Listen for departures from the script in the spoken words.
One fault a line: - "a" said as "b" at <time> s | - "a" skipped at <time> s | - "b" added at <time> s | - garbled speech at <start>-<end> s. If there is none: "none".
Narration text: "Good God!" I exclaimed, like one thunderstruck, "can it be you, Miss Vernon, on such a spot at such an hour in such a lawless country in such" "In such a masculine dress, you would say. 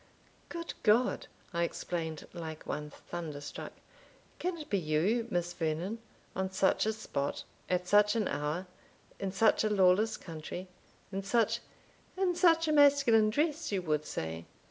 none